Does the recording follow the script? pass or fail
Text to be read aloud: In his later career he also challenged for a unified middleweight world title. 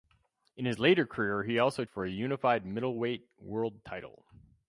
fail